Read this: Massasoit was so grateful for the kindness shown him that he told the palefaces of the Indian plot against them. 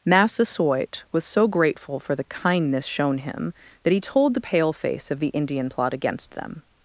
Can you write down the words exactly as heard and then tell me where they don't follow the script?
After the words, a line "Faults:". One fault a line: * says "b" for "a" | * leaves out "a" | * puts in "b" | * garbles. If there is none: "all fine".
Massasoit was so grateful for the kindness shown him that he told the paleface of the Indian plot against them.
Faults:
* says "paleface" for "palefaces"